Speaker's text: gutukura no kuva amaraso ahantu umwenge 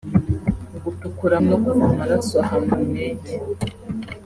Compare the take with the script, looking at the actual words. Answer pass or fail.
pass